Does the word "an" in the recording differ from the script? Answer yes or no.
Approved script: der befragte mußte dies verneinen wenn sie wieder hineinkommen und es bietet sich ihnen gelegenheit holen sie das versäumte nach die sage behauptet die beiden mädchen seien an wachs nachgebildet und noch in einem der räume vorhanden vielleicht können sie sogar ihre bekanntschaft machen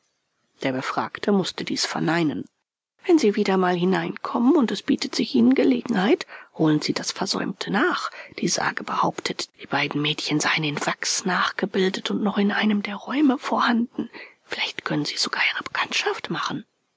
yes